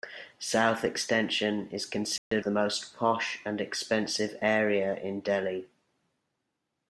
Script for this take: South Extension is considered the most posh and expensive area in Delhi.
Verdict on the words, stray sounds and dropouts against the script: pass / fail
fail